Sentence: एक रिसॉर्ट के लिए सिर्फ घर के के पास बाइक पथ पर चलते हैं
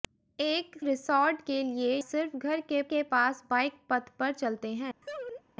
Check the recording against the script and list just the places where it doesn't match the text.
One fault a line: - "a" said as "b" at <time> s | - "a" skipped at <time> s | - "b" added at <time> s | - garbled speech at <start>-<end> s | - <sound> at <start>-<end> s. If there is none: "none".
- laugh at 5.0-5.4 s